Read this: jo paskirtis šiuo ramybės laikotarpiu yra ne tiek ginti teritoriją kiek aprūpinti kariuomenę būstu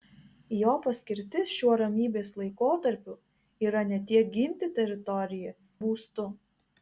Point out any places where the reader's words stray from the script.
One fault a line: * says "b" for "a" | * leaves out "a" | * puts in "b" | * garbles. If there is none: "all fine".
* leaves out "kiek aprūpinti kariuomenę"